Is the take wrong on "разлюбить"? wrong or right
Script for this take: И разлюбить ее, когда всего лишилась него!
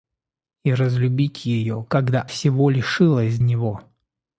right